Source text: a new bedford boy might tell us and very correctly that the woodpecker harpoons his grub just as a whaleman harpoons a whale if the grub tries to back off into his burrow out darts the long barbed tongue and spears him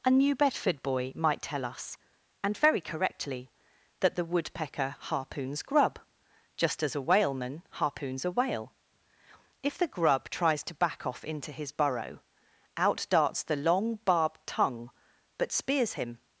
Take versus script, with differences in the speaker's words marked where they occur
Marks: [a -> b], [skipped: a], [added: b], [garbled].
a new bedford boy might tell us and very correctly that the woodpecker harpoons [skipped: his] grub just as a whaleman harpoons a whale if the grub tries to back off into his burrow out darts the long barbed tongue [and -> but] spears him